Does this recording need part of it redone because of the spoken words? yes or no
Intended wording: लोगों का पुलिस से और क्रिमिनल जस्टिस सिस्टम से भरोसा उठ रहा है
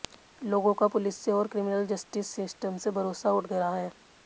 no